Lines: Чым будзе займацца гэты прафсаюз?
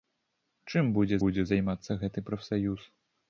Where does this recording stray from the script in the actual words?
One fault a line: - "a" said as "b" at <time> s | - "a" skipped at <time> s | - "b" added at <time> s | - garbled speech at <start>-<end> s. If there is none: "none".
- "будзе" added at 1.2 s